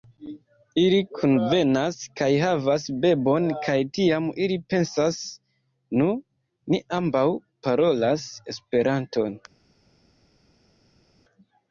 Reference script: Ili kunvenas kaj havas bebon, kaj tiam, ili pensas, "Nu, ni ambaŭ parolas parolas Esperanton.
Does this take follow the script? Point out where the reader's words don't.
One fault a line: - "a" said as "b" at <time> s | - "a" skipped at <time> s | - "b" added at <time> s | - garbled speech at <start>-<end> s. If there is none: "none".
- "parolas" skipped at 8.3 s